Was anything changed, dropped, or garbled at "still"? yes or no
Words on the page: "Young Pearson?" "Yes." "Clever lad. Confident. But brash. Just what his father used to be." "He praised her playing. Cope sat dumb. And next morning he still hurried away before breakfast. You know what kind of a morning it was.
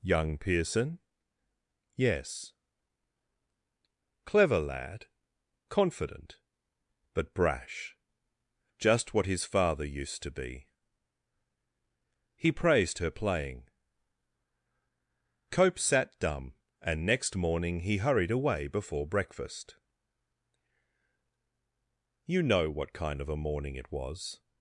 yes